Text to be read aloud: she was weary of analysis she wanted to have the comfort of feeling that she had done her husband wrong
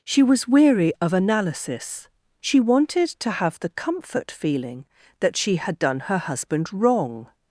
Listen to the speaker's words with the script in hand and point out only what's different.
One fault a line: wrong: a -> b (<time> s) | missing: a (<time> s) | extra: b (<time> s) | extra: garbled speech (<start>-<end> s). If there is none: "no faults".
missing: of (4.3 s)